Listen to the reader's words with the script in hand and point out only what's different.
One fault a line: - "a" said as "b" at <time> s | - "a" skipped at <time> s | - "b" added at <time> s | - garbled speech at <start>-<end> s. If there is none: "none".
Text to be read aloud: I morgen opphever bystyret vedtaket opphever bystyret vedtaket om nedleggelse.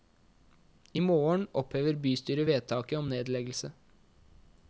- "opphever bystyret vedtaket" skipped at 3.0 s